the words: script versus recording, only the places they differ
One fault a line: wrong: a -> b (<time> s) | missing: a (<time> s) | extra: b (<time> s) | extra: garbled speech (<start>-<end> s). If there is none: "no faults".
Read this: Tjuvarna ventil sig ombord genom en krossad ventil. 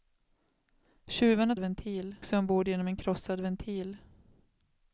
no faults